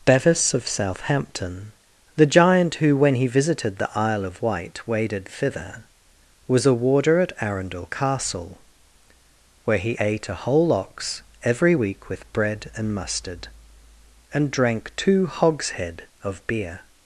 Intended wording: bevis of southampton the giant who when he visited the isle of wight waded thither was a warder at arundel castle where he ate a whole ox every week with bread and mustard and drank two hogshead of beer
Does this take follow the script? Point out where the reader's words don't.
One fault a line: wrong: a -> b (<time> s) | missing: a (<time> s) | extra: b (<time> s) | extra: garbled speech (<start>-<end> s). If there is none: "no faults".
no faults